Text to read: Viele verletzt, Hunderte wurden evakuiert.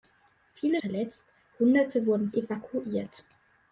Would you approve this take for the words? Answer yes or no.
yes